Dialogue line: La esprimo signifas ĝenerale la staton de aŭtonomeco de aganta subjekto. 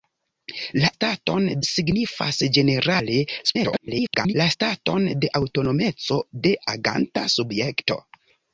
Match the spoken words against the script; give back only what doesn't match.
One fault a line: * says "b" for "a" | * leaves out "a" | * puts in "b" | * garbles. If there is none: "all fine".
* says "staton" for "esprimo"
* garbles